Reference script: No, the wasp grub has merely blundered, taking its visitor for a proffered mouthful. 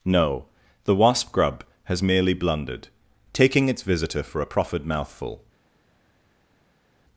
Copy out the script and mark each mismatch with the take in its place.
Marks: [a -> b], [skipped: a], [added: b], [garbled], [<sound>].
No, the wasp grub has merely blundered, taking its visitor for a proffered mouthful.